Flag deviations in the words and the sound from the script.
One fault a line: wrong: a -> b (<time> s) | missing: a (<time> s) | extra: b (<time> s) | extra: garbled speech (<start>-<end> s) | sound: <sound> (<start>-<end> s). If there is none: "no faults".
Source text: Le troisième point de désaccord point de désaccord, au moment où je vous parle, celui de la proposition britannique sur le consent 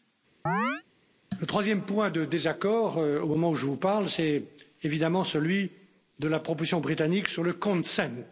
sound: chirp (0.5-0.8 s)
missing: point de désaccord (3.0 s)
extra: c'est évidemment (4.1 s)